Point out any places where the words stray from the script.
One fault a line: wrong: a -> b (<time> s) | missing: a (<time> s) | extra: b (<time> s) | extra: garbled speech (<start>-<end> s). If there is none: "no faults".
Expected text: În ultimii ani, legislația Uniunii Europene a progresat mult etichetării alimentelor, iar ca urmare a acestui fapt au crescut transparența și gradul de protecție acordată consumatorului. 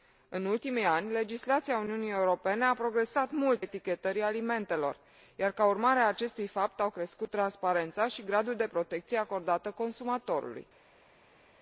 no faults